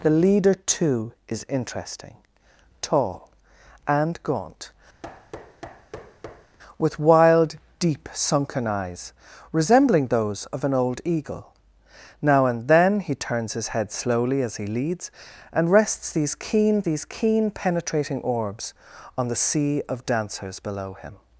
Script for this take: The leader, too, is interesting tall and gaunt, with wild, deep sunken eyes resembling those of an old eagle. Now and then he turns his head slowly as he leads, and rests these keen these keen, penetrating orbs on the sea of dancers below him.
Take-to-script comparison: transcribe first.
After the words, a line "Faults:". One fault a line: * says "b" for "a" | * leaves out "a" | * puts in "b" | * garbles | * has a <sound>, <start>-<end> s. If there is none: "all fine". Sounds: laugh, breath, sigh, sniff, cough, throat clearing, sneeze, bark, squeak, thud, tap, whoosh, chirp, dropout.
The leader, too, is interesting tall and gaunt, with wild, deep sunken eyes resembling those of an old eagle. Now and then he turns his head slowly as he leads, and rests these keen these keen, penetrating orbs on the sea of dancers below him.
Faults:
* has a thud, 5.0-6.6 s